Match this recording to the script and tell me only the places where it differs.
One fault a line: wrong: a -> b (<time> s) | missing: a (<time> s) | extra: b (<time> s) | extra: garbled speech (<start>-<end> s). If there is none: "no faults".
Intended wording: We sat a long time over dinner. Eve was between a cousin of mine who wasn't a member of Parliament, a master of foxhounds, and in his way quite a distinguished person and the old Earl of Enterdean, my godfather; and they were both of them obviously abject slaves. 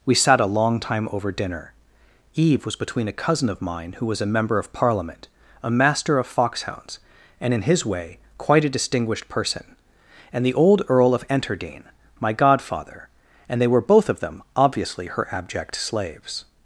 wrong: wasn't -> was (4.1 s)
extra: her (15.1 s)